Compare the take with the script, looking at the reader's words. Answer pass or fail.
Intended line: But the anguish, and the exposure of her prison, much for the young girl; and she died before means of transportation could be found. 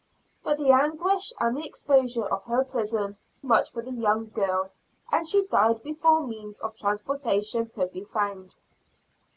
pass